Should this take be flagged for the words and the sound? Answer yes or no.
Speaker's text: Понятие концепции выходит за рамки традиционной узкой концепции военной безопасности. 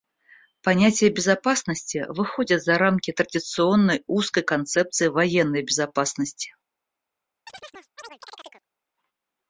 yes